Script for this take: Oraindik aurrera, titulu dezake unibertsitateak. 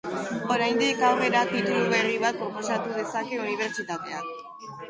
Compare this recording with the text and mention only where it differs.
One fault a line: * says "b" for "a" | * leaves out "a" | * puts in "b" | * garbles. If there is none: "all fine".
* puts in "berri bat proposatu"